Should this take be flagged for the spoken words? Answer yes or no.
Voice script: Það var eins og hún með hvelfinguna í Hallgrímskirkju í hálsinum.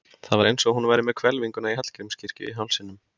yes